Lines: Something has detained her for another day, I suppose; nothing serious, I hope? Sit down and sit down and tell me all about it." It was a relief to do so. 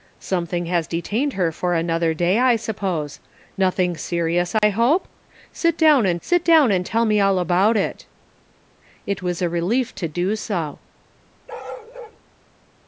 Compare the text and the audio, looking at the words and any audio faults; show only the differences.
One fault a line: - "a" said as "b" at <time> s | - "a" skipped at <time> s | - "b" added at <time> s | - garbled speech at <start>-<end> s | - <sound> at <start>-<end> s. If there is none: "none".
- dropout at 4.6-4.6 s
- bark at 11.5-12.2 s